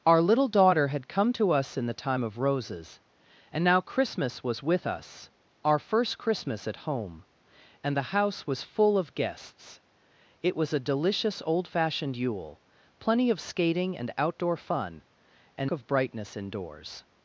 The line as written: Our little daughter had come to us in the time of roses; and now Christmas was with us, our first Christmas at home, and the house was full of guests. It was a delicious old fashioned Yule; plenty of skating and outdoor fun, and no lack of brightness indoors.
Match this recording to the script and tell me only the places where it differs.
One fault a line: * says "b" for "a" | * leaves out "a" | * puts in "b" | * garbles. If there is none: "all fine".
* leaves out "no lack"